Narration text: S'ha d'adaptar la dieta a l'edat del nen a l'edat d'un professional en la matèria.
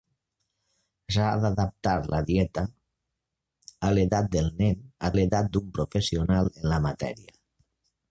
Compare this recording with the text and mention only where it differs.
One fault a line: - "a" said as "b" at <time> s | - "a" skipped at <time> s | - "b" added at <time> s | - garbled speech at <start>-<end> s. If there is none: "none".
none